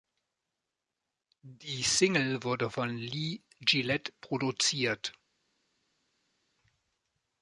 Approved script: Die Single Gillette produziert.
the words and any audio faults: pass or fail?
fail